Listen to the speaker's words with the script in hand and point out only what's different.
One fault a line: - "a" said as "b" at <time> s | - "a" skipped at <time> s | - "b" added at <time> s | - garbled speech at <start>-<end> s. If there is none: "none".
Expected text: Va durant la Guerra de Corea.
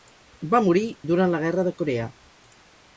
- "morir" added at 0.7 s